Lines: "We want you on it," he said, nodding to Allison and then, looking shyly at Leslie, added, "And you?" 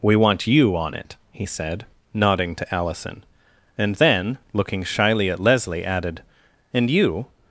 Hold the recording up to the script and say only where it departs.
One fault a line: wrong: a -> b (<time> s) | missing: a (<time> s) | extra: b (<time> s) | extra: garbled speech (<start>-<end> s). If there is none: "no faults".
no faults